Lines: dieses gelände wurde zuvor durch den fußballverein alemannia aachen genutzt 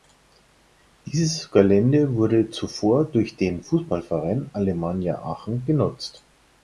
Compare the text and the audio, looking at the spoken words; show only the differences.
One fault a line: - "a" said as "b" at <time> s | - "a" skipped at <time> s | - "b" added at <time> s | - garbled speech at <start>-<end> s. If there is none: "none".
none